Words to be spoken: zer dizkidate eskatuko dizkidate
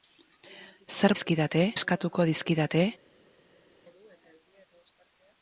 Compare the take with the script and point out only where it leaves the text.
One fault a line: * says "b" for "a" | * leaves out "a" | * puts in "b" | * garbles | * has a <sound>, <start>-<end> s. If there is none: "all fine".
all fine